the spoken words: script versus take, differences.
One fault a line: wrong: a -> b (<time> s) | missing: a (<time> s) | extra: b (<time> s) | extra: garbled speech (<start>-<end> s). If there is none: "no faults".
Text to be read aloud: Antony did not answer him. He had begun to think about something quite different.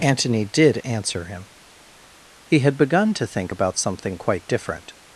missing: not (0.8 s)